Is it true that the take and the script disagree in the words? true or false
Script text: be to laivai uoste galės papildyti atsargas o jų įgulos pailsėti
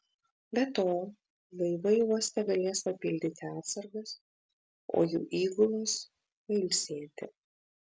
false